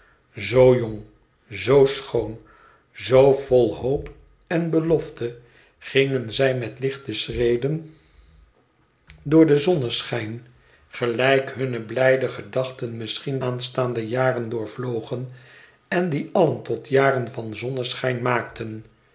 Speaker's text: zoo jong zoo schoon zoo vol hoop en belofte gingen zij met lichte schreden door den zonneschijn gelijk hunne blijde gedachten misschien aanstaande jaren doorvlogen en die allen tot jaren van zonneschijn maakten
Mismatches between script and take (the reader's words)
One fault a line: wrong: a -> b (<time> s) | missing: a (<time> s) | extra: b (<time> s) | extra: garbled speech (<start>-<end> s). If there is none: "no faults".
no faults